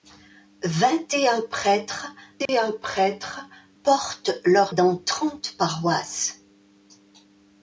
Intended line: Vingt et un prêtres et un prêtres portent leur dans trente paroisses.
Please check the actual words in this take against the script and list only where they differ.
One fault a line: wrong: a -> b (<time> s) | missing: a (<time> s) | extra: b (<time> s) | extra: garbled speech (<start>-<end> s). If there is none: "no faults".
no faults